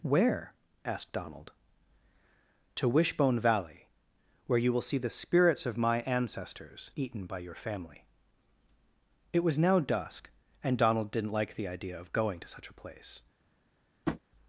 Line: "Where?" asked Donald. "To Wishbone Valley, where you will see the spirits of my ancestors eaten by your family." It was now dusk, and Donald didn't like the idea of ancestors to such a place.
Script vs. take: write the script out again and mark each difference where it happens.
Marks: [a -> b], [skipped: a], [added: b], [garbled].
"Where?" asked Donald. "To Wishbone Valley, where you will see the spirits of my ancestors eaten by your family." It was now dusk, and Donald didn't like the idea of [ancestors -> going] to such a place.